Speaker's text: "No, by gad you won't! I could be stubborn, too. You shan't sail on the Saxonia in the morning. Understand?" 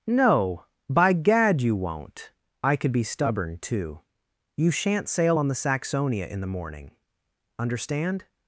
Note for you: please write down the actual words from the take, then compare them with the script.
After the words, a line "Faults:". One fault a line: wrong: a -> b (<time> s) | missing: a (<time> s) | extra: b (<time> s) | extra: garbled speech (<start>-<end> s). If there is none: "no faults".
"No, by gad you won't! I could be stubborn, too. You shan't sail on the Saxonia in the morning. Understand?"
Faults:
no faults